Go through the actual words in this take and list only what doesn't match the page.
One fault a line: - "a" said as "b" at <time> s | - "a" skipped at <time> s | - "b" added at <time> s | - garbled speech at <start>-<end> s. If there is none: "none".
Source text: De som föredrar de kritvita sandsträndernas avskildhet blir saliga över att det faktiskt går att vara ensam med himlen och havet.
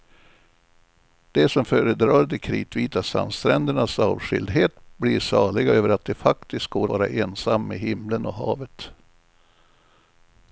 - "att" skipped at 6.9 s